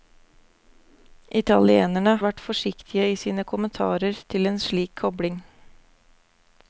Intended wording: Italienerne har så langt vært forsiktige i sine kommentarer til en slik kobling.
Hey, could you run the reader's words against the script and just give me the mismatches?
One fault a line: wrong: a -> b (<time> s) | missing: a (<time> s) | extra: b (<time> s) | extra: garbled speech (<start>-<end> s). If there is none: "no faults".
missing: har så langt (2.1 s)